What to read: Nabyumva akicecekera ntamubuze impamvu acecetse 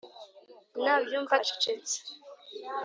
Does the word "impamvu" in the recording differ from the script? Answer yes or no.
yes